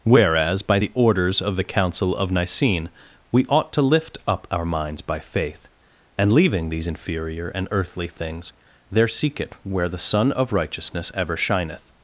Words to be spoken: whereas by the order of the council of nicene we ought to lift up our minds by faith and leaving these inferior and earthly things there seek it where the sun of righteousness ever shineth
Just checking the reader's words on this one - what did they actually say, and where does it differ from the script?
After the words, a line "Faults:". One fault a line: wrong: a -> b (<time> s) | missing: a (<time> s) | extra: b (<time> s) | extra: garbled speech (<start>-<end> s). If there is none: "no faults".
whereas by the orders of the council of nicene we ought to lift up our minds by faith and leaving these inferior and earthly things there seek it where the sun of righteousness ever shineth
Faults:
wrong: order -> orders (0.9 s)